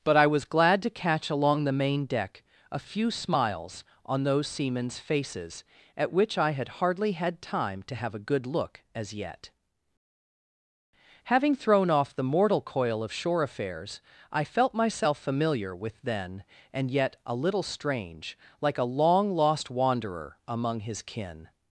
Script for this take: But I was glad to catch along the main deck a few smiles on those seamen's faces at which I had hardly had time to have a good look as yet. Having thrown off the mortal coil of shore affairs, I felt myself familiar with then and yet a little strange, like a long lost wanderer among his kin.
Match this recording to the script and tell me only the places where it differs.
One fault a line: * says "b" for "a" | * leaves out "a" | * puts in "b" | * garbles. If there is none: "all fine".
all fine